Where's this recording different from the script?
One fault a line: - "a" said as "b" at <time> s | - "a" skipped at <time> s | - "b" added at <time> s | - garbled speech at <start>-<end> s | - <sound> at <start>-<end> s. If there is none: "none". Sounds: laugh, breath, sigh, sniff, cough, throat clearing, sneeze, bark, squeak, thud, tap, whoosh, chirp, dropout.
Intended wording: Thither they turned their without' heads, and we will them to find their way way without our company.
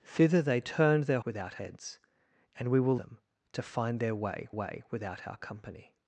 none